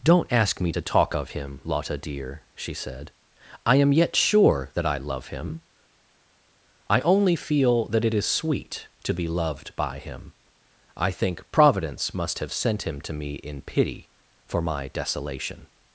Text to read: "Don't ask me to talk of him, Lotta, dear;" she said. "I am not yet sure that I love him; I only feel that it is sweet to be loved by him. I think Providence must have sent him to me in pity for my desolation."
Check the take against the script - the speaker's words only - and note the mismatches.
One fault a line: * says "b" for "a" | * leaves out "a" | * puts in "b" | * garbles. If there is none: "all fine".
* leaves out "not"